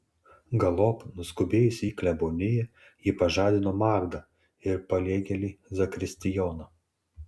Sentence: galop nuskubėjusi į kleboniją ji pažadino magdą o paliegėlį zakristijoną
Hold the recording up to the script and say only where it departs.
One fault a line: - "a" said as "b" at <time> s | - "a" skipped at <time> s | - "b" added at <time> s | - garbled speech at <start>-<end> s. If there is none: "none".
- "o" said as "ir" at 4.7 s